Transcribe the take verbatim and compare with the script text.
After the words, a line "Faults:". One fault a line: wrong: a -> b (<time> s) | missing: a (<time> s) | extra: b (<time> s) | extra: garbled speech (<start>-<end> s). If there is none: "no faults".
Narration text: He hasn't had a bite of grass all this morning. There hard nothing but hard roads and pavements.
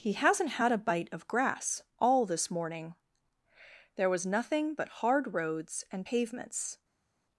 He hasn't had a bite of grass all this morning. There was nothing but hard roads and pavements.
Faults:
wrong: hard -> was (4.1 s)